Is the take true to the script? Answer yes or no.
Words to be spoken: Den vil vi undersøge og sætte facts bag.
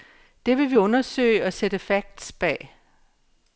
no